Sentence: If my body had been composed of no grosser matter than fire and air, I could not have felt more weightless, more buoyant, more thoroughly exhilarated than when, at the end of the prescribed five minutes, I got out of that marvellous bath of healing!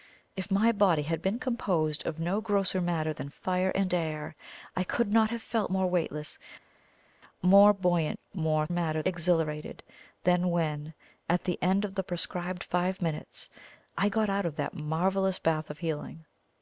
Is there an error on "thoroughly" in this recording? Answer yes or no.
yes